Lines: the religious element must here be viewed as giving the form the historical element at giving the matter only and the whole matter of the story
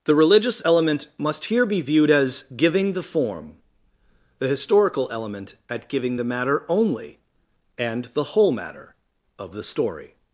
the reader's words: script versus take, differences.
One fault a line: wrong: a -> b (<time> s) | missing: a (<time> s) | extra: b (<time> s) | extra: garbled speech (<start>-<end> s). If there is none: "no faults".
no faults